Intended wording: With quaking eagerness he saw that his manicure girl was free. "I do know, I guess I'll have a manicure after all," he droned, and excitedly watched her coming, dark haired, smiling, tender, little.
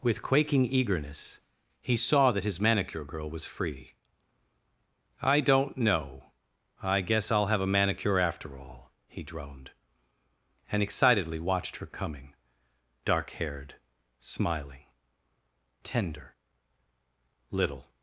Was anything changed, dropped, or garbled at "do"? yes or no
yes